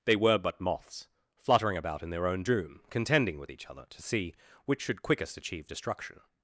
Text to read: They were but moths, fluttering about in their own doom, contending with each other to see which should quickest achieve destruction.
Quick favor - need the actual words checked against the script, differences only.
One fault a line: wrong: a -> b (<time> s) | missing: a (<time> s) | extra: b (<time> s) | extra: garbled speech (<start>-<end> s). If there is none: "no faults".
no faults